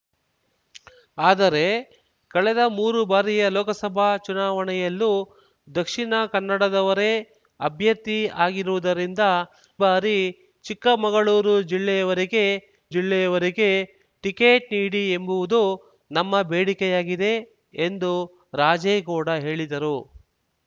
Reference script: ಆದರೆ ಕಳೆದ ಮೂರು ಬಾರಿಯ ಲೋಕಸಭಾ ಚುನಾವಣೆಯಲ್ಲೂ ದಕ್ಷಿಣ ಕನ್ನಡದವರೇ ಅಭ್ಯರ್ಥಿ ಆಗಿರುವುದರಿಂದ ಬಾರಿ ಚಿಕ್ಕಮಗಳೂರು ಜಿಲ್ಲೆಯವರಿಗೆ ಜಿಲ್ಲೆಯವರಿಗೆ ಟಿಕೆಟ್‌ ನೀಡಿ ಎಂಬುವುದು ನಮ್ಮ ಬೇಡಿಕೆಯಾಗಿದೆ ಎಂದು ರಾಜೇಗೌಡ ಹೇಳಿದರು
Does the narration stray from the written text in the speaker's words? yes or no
no